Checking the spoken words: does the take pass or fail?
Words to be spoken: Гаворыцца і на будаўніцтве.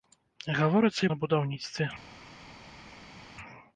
pass